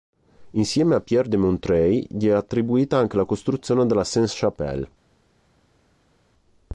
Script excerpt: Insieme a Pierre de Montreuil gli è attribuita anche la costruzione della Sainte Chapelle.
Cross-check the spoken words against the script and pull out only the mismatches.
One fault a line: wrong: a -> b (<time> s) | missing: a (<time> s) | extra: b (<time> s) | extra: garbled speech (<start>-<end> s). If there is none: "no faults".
no faults